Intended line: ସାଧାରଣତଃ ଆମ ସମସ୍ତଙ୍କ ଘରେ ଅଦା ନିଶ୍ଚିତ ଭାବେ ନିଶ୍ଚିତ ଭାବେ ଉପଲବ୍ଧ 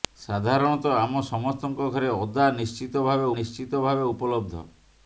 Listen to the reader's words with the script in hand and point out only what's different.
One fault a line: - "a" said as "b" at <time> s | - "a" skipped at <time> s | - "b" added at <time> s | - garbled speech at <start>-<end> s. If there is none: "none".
none